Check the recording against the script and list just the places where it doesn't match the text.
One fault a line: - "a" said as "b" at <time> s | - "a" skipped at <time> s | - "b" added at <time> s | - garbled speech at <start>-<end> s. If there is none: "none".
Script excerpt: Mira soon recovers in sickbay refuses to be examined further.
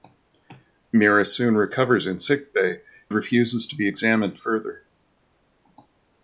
none